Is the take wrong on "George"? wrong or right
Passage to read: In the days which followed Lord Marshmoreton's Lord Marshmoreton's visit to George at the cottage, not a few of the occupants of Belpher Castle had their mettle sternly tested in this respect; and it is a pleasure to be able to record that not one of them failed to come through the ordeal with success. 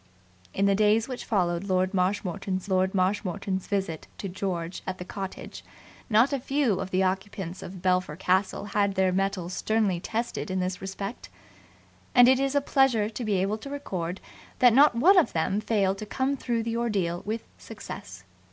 right